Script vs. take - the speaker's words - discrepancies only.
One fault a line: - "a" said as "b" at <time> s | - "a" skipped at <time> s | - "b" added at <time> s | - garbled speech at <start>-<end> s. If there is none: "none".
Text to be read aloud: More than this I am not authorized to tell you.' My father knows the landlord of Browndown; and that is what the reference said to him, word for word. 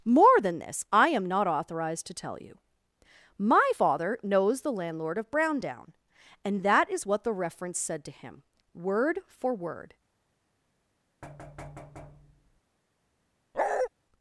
none